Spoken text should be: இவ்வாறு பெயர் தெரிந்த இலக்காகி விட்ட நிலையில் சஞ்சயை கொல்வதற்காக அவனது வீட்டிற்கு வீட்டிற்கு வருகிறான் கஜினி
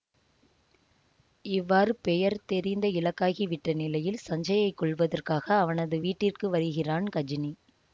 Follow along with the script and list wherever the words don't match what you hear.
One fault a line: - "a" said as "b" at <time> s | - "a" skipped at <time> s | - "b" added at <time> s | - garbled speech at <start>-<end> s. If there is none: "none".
- "வீட்டிற்கு" skipped at 6.5 s